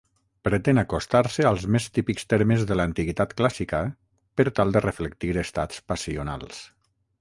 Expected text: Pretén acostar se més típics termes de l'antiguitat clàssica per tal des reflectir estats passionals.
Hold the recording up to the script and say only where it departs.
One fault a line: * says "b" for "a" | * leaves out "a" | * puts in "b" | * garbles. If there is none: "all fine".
* puts in "als"
* says "de" for "des"